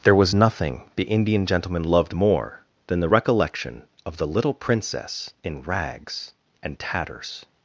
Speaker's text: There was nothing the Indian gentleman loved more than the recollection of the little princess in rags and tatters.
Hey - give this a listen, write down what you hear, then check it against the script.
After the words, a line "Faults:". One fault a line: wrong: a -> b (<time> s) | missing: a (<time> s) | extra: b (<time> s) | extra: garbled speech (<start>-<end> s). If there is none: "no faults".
There was nothing the Indian gentleman loved more than the recollection of the little princess in rags and tatters.
Faults:
no faults